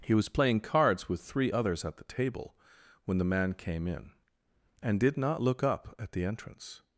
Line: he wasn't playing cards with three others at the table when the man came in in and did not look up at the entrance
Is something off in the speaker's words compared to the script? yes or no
yes